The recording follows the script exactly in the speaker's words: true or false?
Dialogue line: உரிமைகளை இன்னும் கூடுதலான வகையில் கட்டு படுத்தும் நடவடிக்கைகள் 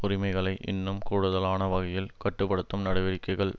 true